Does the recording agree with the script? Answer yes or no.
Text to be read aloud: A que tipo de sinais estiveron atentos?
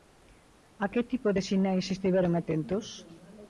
yes